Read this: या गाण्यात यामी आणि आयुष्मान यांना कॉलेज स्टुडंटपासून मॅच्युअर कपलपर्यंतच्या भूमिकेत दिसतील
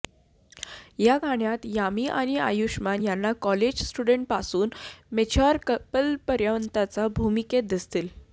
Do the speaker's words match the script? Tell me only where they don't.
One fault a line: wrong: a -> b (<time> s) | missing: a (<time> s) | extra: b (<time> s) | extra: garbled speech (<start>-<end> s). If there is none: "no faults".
no faults